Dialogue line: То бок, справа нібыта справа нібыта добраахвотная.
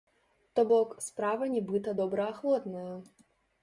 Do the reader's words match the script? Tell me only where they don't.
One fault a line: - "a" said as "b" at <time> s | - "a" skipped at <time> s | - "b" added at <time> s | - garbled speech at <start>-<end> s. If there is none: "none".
- "справа нібыта" skipped at 2.0 s